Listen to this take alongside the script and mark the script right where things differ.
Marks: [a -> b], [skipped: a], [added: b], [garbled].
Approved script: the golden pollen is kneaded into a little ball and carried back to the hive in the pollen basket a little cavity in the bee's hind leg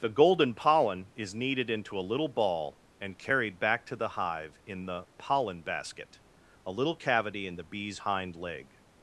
the golden pollen is kneaded into a little ball and carried back to the hive in the pollen basket a little cavity in the bee's hind leg